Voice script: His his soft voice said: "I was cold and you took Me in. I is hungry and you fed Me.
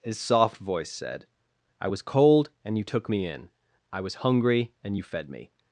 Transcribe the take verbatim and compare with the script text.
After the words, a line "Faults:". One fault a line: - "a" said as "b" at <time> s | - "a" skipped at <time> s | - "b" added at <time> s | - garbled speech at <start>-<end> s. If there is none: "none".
His soft voice said: "I was cold and you took Me in. I was hungry and you fed Me.
Faults:
- "his" skipped at 0.2 s
- "is" said as "was" at 4.0 s